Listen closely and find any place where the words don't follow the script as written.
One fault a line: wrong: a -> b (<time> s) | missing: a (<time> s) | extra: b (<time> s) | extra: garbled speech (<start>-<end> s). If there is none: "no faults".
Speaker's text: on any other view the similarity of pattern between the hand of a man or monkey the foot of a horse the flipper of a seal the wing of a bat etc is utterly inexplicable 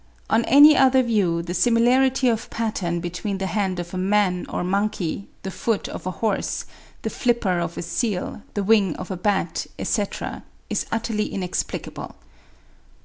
no faults